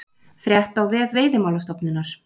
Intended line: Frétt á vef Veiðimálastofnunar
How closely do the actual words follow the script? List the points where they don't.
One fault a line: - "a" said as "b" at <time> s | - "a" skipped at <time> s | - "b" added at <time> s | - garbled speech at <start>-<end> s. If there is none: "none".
none